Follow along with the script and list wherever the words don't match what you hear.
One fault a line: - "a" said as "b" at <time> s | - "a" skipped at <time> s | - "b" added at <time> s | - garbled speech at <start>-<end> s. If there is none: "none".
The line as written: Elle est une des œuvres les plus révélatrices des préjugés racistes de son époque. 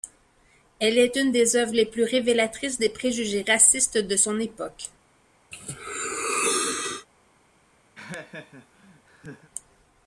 none